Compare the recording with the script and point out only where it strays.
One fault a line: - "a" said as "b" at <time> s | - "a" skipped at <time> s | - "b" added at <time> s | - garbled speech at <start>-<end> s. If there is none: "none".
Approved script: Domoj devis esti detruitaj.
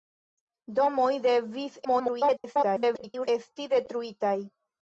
- garbled speech at 1.8-3.3 s